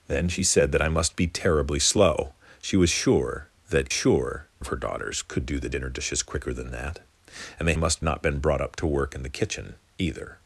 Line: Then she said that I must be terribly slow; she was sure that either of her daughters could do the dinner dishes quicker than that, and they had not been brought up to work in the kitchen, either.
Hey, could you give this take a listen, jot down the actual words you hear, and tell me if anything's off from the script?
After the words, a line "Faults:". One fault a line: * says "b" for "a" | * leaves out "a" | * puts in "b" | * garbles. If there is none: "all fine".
Then she said that I must be terribly slow; she was sure that sure of her daughters could do the dinner dishes quicker than that, and they must not been brought up to work in the kitchen, either.
Faults:
* says "sure" for "either"
* says "must" for "had"